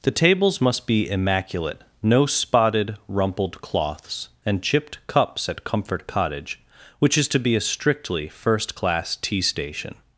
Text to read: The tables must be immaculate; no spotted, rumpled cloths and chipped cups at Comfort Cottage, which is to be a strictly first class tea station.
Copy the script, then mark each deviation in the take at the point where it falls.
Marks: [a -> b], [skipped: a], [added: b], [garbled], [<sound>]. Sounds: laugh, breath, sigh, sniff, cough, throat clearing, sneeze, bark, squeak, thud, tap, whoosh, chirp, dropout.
The tables must be immaculate; no spotted, rumpled cloths and chipped cups at Comfort Cottage, which is to be a strictly first class tea station.